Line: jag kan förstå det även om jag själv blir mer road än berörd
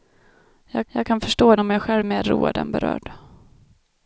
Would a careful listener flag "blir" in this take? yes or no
yes